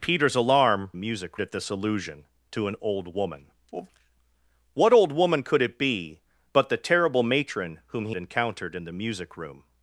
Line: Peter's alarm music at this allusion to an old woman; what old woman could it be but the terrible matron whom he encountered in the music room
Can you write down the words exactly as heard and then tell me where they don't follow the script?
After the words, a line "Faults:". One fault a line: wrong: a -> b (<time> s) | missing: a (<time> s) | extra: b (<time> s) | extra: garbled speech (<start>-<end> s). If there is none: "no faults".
Peter's alarm music at this allusion to an old woman; what old woman could it be but the terrible matron whom he encountered in the music room
Faults:
no faults